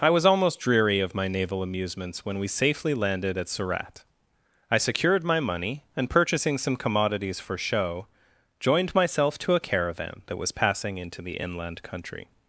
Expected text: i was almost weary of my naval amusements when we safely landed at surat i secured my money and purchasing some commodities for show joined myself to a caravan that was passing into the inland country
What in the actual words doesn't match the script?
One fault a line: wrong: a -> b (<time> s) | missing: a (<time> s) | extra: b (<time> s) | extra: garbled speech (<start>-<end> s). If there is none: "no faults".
wrong: weary -> dreary (0.6 s)